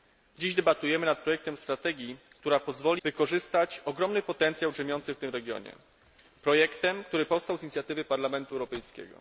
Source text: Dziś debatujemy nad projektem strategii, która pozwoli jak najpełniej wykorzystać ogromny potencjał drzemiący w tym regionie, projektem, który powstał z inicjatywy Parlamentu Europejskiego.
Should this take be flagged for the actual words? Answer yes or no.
yes